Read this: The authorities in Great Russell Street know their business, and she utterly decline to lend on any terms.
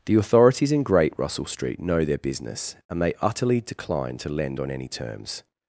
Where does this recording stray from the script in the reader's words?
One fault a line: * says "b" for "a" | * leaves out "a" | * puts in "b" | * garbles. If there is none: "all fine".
* says "they" for "she"